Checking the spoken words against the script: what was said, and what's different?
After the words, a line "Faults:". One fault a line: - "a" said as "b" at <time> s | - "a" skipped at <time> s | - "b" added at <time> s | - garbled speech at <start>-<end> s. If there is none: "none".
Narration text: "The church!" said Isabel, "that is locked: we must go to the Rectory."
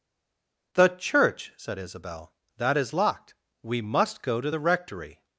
"The church!" said Isabel, "that is locked: we must go to the Rectory."
Faults:
none